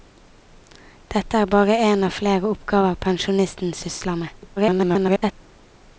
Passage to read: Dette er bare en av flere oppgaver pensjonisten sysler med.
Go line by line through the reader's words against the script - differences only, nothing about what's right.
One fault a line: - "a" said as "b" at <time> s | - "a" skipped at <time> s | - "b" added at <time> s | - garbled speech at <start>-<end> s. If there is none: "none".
- garbled speech at 4.6-5.3 s